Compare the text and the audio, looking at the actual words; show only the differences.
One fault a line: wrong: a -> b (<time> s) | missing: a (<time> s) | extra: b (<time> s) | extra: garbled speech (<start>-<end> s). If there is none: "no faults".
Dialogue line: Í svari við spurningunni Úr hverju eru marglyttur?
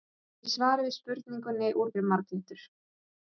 missing: hverju (1.9 s)